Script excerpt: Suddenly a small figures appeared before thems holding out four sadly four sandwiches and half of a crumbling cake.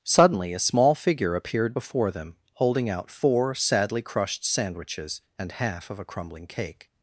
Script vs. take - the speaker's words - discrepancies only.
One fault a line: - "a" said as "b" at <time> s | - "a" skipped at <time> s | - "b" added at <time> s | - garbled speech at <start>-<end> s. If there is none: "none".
- "figures" said as "figure" at 0.9 s
- "thems" said as "them" at 2.1 s
- "four" said as "crushed" at 4.0 s